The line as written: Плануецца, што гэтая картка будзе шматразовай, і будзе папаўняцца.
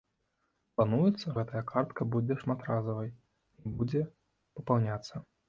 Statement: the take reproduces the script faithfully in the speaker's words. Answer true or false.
false